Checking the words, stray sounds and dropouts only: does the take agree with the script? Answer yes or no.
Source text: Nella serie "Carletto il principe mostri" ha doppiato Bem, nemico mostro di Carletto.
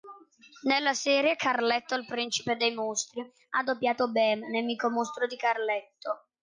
no